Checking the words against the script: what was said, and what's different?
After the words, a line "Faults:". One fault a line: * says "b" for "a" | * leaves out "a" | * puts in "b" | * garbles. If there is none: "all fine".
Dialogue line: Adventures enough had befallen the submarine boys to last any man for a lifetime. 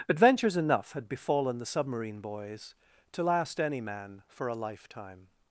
Adventures enough had befallen the submarine boys to last any man for a lifetime.
Faults:
all fine